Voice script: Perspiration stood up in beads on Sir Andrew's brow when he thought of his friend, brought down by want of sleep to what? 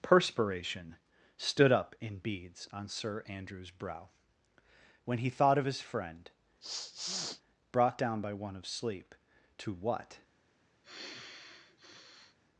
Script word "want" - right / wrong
wrong